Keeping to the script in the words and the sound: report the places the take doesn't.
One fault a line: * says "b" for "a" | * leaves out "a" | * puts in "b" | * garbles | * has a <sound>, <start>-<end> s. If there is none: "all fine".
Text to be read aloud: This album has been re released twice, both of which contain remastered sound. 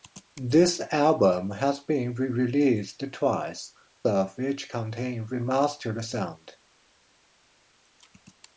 * leaves out "both"